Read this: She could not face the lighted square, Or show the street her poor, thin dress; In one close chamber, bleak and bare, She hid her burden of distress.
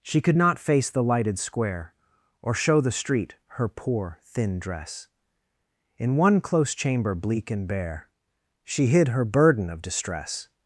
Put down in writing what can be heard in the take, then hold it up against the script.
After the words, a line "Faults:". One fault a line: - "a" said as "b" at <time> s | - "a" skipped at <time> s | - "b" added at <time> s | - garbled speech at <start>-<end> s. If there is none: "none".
She could not face the lighted square, Or show the street her poor, thin dress; In one close chamber, bleak and bare, She hid her burden of distress.
Faults:
none